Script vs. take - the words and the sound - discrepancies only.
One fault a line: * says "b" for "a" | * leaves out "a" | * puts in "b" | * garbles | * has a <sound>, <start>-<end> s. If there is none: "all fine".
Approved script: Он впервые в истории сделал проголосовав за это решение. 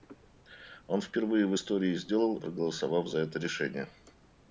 all fine